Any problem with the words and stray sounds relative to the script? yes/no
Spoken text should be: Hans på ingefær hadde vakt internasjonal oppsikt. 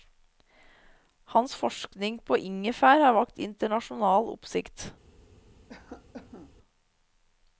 yes